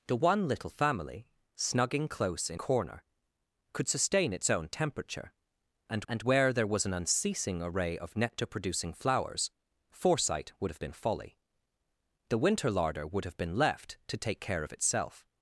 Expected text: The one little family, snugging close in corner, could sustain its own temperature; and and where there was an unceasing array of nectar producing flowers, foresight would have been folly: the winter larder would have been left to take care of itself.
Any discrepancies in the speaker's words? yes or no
no